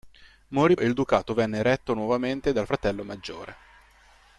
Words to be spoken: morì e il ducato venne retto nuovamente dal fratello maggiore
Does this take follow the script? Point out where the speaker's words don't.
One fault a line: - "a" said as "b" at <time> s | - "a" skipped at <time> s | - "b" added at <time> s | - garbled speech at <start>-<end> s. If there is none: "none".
none